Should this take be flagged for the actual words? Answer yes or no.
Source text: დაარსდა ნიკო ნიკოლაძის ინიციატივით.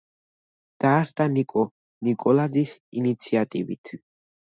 no